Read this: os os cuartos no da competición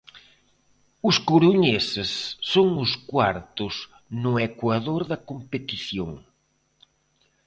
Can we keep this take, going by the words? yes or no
no